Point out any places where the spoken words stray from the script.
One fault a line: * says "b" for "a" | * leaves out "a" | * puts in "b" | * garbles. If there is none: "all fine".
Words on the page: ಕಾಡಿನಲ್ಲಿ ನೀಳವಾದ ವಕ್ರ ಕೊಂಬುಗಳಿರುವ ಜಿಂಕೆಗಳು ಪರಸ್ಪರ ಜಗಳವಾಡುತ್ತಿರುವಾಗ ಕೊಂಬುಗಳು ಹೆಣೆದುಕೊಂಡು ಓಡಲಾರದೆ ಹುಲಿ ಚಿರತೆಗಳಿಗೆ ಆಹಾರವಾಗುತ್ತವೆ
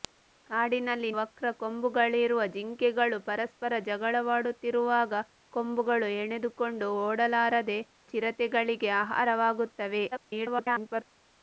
* leaves out "ನೀಳವಾದ"
* leaves out "ಹುಲಿ"
* garbles